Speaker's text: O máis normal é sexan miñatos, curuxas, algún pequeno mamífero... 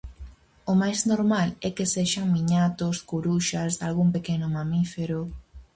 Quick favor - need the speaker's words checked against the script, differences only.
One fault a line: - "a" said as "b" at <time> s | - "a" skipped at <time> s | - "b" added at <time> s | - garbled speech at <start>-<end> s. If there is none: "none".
- "que" added at 1.8 s